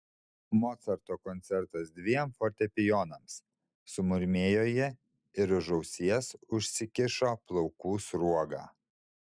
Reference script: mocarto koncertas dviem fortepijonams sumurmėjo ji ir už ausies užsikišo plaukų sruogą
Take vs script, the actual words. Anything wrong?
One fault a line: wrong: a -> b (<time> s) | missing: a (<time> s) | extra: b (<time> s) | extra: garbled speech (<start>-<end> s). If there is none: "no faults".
no faults